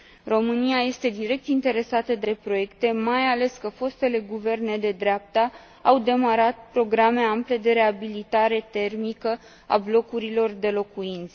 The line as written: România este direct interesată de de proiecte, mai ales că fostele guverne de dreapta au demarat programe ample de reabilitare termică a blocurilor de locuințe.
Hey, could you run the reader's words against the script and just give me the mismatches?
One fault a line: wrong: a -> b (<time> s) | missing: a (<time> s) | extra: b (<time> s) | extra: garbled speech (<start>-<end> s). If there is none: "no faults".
no faults